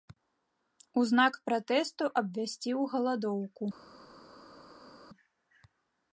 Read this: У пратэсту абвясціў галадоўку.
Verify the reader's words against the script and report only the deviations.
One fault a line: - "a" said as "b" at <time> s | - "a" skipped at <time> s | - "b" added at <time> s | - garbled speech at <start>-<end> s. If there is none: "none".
- "знак" added at 1.1 s